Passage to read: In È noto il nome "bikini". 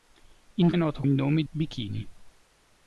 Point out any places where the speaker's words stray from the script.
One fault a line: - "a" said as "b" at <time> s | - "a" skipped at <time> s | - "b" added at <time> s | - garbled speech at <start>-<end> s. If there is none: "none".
none